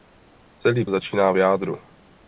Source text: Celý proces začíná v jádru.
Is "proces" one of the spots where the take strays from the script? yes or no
yes